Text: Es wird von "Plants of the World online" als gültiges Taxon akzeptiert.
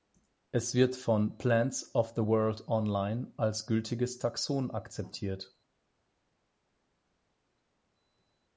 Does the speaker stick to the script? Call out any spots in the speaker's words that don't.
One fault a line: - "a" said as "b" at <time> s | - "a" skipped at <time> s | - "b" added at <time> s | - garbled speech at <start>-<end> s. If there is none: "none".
none